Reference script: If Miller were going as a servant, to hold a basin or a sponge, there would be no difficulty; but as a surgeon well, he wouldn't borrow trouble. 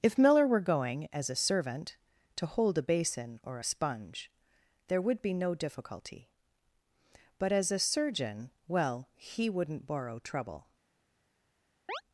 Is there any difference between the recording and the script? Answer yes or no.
no